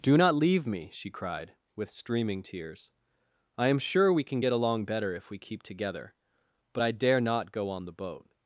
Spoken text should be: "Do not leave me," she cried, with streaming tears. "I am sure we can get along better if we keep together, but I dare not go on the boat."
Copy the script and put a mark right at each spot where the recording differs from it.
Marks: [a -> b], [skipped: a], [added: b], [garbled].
"Do not leave me," she cried, with streaming tears. "I am sure we can get along better if we keep together, but I dare not go on the boat."